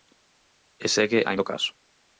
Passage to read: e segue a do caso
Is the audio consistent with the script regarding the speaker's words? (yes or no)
yes